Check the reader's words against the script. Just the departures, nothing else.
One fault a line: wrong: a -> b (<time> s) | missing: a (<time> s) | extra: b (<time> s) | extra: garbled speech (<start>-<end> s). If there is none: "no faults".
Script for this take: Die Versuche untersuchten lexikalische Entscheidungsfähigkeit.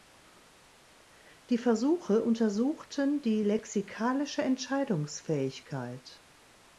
extra: die (3.2 s)